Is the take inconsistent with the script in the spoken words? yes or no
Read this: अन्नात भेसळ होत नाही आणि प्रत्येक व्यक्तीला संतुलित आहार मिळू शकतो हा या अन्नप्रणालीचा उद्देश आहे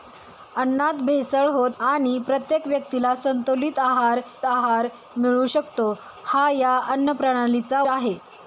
yes